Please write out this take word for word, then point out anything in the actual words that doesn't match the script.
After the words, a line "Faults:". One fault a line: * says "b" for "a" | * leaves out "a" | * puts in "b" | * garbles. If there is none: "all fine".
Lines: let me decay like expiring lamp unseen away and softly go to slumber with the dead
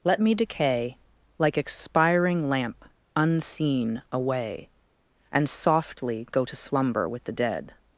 let me decay like expiring lamp unseen away and softly go to slumber with the dead
Faults:
all fine